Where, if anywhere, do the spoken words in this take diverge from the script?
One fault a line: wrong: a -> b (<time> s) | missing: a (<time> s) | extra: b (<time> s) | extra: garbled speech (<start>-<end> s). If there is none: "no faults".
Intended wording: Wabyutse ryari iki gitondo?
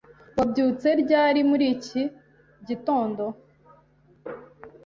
extra: muri (1.5 s)